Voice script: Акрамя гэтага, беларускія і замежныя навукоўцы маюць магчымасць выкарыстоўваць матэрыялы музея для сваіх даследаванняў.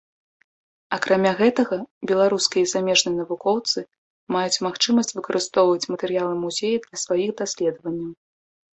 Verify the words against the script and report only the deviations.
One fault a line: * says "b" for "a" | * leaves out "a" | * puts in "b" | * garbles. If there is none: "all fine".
all fine